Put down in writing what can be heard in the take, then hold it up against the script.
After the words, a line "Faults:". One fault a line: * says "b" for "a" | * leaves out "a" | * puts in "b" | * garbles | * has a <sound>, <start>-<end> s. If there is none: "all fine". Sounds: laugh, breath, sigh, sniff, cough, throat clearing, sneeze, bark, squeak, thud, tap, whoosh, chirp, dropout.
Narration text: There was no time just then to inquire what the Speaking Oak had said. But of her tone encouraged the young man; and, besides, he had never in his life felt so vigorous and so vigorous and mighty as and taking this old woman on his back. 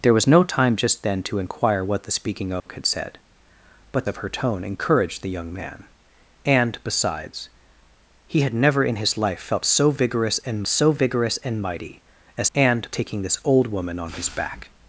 There was no time just then to inquire what the Speaking Oak had said. But of her tone encouraged the young man; and, besides, he had never in his life felt so vigorous and so vigorous and mighty as and taking this old woman on his back.
Faults:
* has a dropout, 2.6-2.7 s